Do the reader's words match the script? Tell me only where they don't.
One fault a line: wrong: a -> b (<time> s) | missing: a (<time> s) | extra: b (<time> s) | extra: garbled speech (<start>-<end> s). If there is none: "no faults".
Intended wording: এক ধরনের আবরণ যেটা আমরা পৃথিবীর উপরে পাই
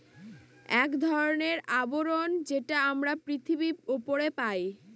no faults